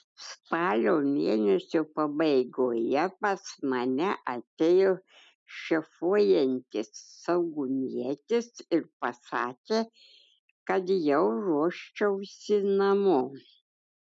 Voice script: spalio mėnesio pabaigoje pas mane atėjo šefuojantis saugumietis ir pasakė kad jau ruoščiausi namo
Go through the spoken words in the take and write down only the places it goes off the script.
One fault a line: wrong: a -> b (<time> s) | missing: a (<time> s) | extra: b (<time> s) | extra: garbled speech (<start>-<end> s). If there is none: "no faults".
no faults